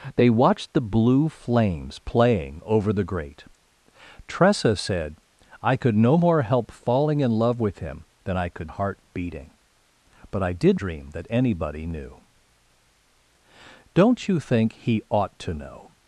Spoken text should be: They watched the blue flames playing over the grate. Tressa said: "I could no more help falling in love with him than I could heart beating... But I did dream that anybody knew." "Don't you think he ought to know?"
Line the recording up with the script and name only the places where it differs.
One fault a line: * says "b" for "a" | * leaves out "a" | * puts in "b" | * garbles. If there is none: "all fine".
all fine